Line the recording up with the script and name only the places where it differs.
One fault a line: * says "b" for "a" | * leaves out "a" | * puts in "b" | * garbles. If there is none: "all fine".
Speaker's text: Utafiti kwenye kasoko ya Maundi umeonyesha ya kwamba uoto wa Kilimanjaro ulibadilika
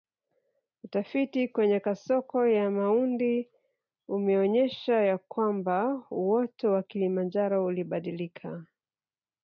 all fine